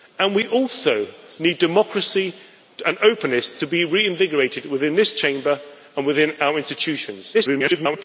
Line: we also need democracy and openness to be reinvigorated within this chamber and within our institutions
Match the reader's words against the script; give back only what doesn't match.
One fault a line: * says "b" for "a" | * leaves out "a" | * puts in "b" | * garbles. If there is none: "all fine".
* garbles